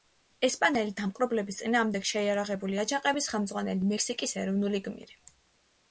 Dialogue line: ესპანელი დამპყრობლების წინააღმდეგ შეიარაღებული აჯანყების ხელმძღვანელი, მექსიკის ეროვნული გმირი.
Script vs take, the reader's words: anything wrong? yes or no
no